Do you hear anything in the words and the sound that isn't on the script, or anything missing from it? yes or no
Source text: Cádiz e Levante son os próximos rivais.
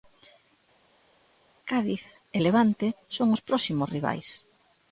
no